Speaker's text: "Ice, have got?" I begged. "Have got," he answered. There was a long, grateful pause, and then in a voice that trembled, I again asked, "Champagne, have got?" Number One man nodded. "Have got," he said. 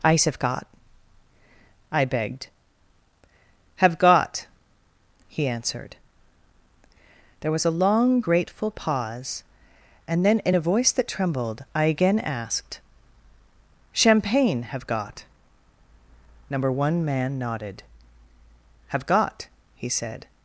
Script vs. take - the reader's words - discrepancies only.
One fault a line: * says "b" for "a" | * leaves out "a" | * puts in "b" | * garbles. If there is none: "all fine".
all fine